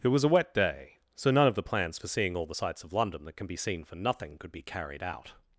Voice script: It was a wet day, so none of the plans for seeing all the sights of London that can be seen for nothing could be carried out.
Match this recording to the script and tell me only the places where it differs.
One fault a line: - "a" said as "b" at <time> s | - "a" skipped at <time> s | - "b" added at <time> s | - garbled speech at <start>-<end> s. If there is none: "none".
none